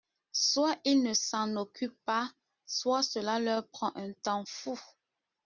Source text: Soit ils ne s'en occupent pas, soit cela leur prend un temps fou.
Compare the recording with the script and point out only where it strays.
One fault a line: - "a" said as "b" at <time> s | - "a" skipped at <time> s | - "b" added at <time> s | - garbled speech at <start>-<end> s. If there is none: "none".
none